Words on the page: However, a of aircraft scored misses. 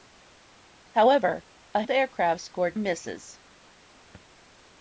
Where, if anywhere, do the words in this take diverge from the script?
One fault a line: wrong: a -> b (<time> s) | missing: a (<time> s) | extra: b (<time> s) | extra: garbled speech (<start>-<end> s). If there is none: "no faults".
no faults